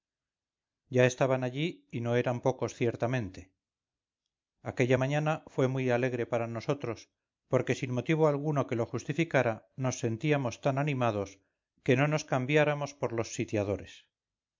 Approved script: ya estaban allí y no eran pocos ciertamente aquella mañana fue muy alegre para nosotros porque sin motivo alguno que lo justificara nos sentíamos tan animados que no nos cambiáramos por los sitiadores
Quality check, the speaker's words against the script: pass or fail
pass